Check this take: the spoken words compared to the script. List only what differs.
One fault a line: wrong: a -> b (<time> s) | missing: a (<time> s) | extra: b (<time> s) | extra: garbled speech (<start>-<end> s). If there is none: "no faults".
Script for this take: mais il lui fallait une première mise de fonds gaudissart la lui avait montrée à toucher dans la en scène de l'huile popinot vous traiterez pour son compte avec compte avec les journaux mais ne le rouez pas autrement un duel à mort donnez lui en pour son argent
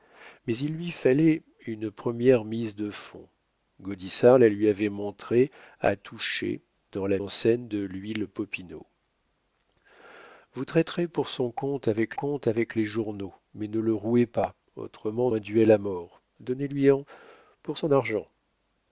no faults